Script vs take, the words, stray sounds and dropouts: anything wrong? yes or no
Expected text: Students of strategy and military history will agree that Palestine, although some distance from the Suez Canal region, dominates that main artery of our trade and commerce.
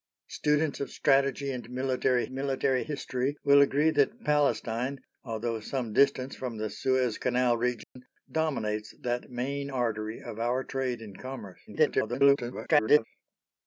yes